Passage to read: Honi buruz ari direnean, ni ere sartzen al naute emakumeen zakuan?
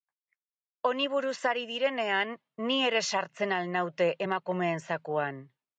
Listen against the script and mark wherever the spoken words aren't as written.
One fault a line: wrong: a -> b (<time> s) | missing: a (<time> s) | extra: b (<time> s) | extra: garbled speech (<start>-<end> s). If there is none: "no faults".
no faults